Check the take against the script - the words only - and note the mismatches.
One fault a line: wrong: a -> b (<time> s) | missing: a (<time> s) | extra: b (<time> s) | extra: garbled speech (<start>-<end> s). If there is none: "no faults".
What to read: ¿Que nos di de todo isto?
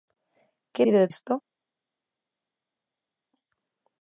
missing: nos (0.8 s)
missing: todo (1.1 s)